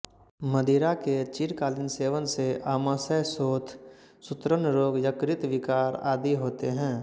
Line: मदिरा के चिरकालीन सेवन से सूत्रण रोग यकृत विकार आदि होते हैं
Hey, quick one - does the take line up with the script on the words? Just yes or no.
no